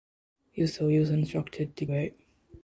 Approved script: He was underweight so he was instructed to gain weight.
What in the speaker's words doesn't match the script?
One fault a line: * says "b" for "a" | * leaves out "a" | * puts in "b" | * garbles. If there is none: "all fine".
* leaves out "underweight"
* leaves out "gain"